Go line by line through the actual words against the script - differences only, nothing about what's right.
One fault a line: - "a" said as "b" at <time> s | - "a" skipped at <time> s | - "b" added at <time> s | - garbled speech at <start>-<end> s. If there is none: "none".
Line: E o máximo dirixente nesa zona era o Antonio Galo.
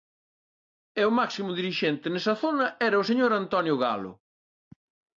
- "señor" added at 3.1 s